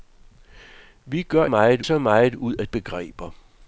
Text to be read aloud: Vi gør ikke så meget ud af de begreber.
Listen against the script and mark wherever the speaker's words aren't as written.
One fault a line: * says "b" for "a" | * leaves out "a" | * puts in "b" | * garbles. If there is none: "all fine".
* says "meget" for "ikke"
* leaves out "de"